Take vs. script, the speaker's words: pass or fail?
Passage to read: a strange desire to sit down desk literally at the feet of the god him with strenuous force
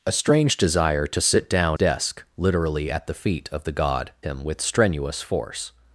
pass